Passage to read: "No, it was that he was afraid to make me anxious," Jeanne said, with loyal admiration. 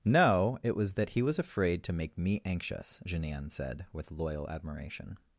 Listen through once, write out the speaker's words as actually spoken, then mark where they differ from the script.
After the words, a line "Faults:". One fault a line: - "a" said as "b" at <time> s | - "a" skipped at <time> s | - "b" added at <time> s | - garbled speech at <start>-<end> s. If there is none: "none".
"No, it was that he was afraid to make me anxious," Jeanne said, with loyal admiration.
Faults:
none